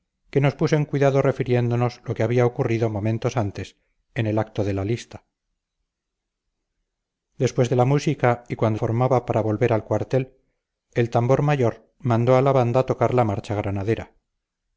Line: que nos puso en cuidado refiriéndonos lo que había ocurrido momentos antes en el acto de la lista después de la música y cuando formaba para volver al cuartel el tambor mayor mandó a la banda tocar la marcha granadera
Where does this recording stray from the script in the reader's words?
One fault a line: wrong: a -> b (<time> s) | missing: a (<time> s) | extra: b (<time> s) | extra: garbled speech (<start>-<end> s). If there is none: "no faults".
no faults